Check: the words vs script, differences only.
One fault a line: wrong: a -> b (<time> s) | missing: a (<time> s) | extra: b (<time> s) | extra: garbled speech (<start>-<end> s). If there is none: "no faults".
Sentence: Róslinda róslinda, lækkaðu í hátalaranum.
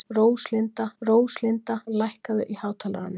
no faults